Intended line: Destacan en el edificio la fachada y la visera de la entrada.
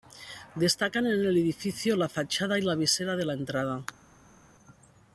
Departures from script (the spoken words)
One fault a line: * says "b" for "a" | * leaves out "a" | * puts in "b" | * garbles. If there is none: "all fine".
all fine